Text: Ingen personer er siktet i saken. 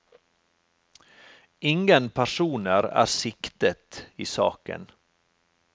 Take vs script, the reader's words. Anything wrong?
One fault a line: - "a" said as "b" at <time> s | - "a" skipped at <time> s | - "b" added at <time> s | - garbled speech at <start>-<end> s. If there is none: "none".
none